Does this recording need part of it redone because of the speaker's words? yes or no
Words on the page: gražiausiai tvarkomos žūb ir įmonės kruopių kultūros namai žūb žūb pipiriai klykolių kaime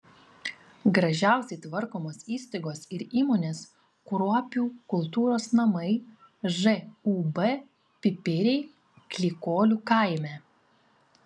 yes